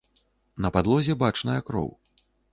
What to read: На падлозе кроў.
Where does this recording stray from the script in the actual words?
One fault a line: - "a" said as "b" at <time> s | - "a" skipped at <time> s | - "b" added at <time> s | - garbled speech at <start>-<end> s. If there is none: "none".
- "бачная" added at 1.3 s